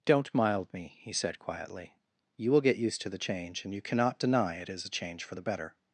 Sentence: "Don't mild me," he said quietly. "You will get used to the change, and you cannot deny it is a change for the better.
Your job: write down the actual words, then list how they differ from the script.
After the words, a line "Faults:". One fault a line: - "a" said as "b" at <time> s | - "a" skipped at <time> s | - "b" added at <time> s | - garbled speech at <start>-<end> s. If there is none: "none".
"Don't mild me," he said quietly. "You will get used to the change, and you cannot deny it is a change for the better.
Faults:
none